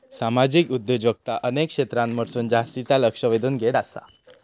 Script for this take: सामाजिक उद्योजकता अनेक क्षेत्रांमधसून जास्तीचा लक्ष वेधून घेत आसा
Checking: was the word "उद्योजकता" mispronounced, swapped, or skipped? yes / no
no